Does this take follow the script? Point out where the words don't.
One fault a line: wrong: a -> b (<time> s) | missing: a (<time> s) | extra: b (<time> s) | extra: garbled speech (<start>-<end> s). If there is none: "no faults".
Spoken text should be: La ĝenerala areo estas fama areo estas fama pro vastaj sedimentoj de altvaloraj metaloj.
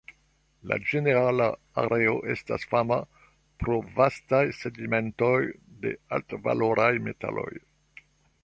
missing: areo estas fama (3.0 s)